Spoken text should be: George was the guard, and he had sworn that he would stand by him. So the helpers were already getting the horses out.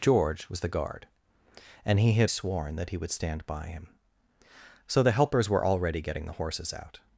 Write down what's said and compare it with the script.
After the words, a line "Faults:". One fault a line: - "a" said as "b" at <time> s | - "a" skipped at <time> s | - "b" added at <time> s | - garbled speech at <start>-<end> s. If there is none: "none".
George was the guard, and he had sworn that he would stand by him. So the helpers were already getting the horses out.
Faults:
none